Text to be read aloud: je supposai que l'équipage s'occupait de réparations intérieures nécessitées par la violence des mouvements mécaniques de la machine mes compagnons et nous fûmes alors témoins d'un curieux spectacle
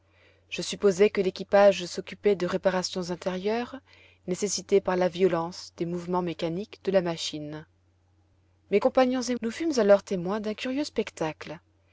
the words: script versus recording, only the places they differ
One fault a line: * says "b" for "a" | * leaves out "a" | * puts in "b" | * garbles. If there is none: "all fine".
all fine